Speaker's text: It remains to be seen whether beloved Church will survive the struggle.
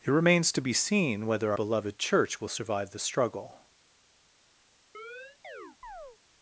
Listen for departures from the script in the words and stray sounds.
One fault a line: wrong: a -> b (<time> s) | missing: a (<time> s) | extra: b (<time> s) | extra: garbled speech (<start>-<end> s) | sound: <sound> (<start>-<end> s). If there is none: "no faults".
sound: chirp (4.9-6.2 s)